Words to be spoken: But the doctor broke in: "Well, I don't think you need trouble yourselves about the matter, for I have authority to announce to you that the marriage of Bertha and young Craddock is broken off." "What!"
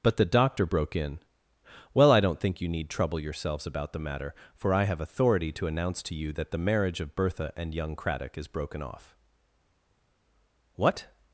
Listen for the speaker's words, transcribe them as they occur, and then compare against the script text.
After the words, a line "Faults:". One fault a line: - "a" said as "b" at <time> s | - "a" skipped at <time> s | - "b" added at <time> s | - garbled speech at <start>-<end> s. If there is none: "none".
But the doctor broke in: "Well, I don't think you need trouble yourselves about the matter, for I have authority to announce to you that the marriage of Bertha and young Craddock is broken off." "What!"
Faults:
none